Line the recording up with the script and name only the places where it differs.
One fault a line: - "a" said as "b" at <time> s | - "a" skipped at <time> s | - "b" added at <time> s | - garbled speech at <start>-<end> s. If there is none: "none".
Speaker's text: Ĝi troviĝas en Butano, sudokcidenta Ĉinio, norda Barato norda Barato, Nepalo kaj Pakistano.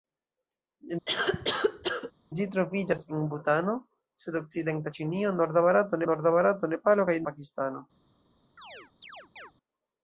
none